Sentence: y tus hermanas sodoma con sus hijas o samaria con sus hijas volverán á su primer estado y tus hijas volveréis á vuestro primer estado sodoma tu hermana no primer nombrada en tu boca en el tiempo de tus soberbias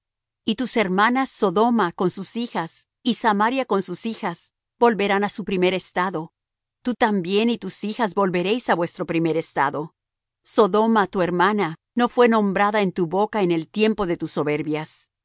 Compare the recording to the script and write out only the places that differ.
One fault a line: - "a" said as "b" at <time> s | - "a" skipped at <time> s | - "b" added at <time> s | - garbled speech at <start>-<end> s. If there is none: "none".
- "o" said as "y" at 3.0 s
- "tú también" added at 6.8 s
- "primer" said as "fué" at 12.1 s